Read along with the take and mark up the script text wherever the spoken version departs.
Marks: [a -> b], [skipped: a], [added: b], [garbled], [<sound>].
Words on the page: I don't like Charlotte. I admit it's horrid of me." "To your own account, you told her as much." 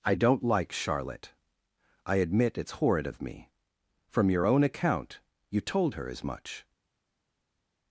I don't like Charlotte. I admit it's horrid of me." ["To -> From] your own account, you told her as much."